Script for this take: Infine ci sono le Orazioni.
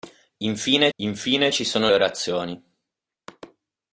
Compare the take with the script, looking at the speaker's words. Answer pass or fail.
fail